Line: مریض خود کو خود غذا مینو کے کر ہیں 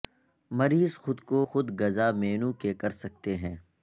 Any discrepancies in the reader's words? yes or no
yes